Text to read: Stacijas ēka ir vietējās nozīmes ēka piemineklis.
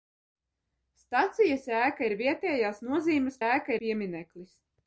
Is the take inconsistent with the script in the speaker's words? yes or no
no